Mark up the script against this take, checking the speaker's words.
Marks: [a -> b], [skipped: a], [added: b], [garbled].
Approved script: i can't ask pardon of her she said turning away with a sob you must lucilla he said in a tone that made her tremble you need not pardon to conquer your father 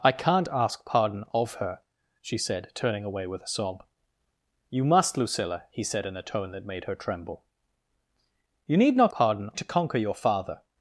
i can't ask pardon of her she said turning away with a sob you must lucilla he said in a tone that made her tremble you need not pardon to conquer your father